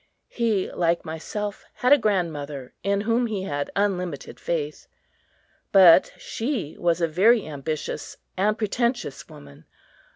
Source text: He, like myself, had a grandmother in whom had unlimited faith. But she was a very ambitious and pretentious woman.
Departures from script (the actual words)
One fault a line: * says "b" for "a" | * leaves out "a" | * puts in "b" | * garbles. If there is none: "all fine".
* puts in "he"